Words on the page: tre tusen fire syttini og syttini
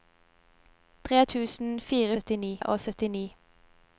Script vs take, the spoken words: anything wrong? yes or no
no